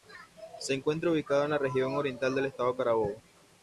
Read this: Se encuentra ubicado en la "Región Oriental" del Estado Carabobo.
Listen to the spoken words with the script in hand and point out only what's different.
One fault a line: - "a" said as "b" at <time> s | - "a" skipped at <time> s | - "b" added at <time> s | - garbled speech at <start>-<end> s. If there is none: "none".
none